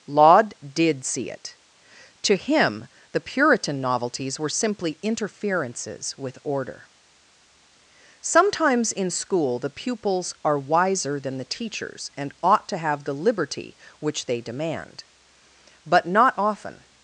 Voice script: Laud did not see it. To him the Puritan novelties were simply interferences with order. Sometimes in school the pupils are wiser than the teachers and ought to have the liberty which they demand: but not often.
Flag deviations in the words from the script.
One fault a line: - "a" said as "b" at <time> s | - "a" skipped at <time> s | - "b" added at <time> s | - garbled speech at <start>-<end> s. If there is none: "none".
- "not" skipped at 1.0 s